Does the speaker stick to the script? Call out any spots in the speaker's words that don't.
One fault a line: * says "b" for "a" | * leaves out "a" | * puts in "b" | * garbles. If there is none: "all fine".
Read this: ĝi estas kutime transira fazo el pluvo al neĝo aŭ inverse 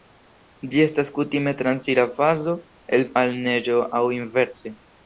* leaves out "pluvo"